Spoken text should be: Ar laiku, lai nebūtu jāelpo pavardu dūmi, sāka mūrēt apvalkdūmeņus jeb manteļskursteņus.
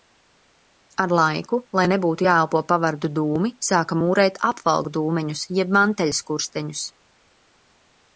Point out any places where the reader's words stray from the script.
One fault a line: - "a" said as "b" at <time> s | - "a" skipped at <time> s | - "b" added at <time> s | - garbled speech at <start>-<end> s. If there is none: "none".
none